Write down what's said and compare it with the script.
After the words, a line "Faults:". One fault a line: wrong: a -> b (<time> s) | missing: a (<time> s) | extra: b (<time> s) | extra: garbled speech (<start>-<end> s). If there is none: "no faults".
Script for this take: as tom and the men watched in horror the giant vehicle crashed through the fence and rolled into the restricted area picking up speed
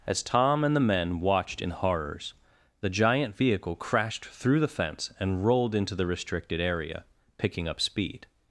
as tom and the men watched in horrors the giant vehicle crashed through the fence and rolled into the restricted area picking up speed
Faults:
wrong: horror -> horrors (1.7 s)